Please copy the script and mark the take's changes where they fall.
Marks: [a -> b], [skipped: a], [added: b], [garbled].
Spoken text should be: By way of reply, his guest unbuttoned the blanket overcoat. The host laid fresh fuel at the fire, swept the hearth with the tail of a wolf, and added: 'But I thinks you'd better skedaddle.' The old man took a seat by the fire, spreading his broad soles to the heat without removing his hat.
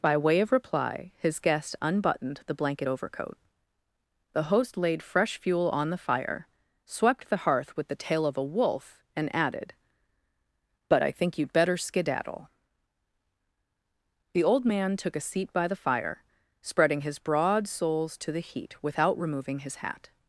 By way of reply, his guest unbuttoned the blanket overcoat. The host laid fresh fuel [at -> on] the fire, swept the hearth with the tail of a wolf, and added: 'But I [thinks -> think] you'd better skedaddle.' The old man took a seat by the fire, spreading his broad soles to the heat without removing his hat.